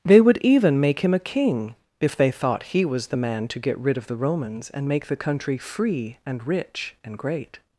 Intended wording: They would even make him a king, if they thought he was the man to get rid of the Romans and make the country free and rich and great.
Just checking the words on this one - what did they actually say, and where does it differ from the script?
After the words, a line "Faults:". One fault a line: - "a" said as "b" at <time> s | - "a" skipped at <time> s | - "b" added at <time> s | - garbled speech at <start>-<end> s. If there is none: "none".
They would even make him a king, if they thought he was the man to get rid of the Romans and make the country free and rich and great.
Faults:
none